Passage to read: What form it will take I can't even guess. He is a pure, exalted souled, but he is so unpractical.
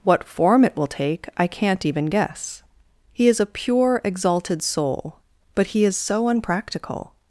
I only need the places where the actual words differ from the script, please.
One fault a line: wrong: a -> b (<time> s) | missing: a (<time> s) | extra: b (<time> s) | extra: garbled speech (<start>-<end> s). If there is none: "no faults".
wrong: souled -> soul (4.6 s)